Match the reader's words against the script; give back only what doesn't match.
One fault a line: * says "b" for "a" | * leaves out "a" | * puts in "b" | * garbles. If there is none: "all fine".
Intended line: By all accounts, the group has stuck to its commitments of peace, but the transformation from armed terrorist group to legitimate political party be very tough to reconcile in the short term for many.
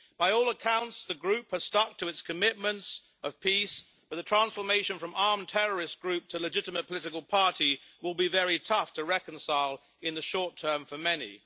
* puts in "will"